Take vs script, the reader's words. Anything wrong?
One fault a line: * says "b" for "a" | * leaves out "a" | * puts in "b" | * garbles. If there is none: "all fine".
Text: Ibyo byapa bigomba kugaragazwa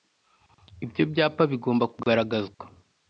all fine